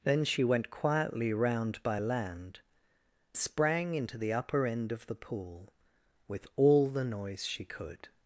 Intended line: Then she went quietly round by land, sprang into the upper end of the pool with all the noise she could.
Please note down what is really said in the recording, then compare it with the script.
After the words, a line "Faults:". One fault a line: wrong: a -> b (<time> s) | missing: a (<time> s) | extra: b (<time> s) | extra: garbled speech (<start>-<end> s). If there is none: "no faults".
Then she went quietly round by land, sprang into the upper end of the pool with all the noise she could.
Faults:
no faults